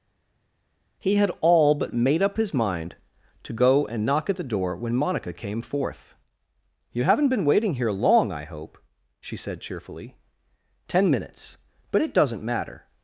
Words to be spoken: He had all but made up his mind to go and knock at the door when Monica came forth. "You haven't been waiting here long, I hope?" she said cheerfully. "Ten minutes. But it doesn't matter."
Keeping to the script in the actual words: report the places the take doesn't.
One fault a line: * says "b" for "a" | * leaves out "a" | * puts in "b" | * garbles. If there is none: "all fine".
all fine